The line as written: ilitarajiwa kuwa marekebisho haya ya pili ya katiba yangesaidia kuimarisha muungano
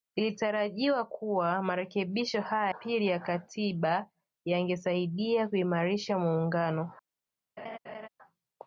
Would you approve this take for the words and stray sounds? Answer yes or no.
no